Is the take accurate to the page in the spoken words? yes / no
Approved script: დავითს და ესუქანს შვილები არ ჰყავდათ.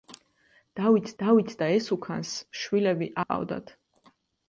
no